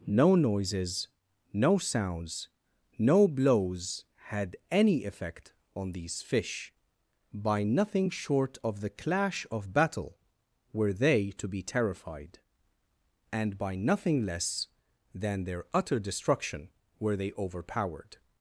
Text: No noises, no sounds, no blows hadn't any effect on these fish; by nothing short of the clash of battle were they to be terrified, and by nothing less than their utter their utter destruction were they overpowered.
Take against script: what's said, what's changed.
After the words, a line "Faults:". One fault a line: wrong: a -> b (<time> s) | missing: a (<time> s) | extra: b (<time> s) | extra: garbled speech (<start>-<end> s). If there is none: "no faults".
No noises, no sounds, no blows had any effect on these fish; by nothing short of the clash of battle were they to be terrified, and by nothing less than their utter destruction were they overpowered.
Faults:
wrong: hadn't -> had (4.2 s)
missing: their utter (16.0 s)